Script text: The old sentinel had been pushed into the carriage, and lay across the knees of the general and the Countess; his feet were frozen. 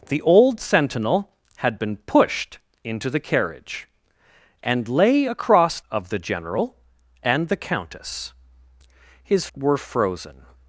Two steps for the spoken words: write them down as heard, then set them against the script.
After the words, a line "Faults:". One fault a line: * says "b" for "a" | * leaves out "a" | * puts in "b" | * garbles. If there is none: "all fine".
The old sentinel had been pushed into the carriage, and lay across of the general and the Countess; his were frozen.
Faults:
* leaves out "the knees"
* leaves out "feet"